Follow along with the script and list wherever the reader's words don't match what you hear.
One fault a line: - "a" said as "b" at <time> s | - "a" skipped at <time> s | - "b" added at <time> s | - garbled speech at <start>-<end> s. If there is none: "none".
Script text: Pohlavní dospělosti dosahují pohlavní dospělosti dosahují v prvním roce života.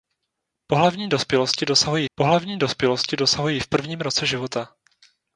none